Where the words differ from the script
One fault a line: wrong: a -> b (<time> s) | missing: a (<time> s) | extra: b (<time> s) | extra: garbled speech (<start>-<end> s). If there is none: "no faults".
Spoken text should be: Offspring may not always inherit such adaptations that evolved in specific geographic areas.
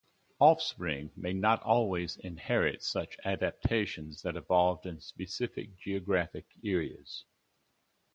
no faults